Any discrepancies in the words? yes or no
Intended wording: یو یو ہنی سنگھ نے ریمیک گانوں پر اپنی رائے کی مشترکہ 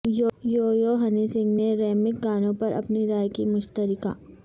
no